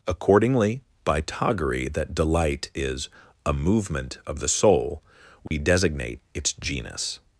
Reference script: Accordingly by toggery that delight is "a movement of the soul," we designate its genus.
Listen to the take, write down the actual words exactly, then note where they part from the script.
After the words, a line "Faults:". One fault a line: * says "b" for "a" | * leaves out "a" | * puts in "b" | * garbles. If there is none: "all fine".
Accordingly by toggery that delight is "a movement of the soul," we designate its genus.
Faults:
all fine